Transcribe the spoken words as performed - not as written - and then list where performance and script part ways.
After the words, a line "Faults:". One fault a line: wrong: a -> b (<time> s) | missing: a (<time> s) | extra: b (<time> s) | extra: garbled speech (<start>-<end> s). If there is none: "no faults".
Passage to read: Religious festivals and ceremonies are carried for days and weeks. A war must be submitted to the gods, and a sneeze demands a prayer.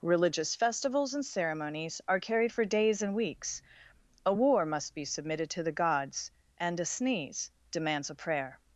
Religious festivals and ceremonies are carried for days and weeks. A war must be submitted to the gods, and a sneeze demands a prayer.
Faults:
no faults